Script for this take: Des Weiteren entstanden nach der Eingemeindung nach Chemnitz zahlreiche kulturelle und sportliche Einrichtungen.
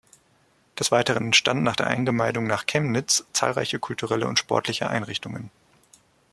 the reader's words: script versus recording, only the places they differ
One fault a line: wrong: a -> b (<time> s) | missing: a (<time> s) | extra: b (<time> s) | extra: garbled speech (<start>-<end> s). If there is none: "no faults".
no faults